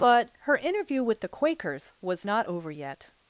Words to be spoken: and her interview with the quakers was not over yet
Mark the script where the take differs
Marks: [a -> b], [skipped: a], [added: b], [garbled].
[and -> but] her interview with the quakers was not over yet